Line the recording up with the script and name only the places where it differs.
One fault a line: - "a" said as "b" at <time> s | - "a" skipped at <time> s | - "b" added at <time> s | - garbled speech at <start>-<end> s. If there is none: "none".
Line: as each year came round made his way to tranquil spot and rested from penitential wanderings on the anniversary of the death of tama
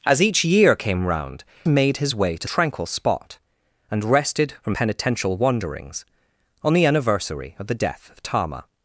none